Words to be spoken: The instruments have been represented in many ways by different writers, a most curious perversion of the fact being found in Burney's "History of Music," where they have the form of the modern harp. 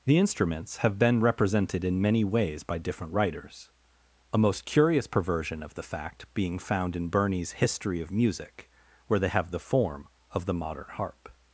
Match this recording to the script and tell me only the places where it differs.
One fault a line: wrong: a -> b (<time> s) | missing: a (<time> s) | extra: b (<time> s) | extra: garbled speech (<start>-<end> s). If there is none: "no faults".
no faults